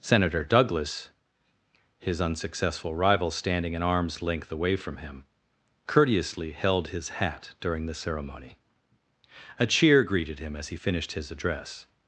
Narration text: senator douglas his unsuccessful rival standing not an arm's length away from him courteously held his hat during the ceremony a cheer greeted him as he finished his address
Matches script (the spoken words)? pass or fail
fail